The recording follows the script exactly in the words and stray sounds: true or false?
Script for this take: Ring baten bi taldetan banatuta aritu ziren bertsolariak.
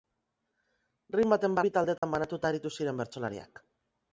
false